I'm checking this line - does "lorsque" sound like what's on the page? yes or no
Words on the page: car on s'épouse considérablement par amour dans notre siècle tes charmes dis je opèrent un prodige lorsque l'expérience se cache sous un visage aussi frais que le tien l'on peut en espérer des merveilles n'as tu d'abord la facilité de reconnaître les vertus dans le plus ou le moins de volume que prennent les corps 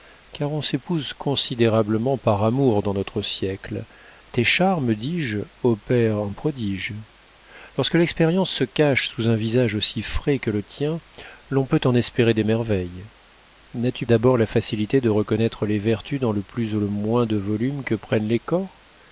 yes